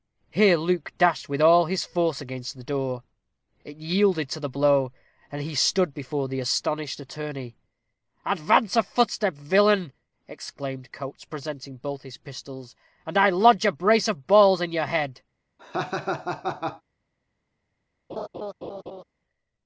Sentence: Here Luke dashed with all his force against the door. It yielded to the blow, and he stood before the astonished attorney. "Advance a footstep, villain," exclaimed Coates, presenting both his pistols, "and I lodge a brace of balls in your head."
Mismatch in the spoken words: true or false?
false